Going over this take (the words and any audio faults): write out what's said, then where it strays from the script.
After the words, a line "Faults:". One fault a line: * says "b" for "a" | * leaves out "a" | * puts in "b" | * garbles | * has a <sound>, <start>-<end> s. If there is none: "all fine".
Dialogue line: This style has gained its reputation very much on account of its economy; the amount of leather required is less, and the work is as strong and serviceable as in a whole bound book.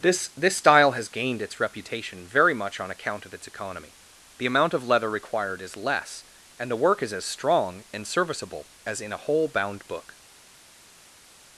This this style has gained its reputation very much on account of its economy; the amount of leather required is less, and the work is as strong and serviceable as in a whole bound book.
Faults:
* puts in "this"